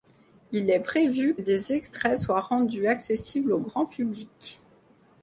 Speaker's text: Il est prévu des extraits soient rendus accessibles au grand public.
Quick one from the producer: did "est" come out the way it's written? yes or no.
yes